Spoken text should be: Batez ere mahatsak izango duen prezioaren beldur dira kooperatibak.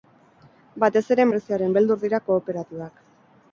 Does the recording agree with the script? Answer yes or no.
no